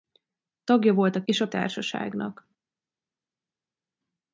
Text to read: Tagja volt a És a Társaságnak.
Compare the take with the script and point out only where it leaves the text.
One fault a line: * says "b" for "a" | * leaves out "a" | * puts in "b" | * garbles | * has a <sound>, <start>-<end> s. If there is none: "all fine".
all fine